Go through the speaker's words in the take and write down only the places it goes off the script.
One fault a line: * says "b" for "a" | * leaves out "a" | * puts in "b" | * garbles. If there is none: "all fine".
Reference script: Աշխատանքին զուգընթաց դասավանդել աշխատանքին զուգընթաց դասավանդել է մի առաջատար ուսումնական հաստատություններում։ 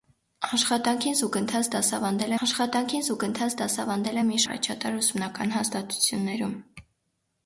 all fine